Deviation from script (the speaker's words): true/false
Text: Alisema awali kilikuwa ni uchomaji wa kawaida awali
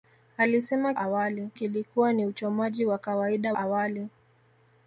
false